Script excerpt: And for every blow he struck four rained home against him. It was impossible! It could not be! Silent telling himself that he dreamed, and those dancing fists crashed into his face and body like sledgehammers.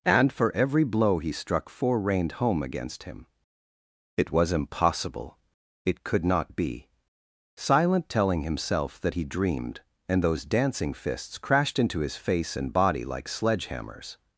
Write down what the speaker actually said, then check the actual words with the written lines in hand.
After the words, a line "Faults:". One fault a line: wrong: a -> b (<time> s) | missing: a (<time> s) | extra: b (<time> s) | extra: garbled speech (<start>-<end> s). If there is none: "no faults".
And for every blow he struck four rained home against him. It was impossible! It could not be! Silent telling himself that he dreamed, and those dancing fists crashed into his face and body like sledgehammers.
Faults:
no faults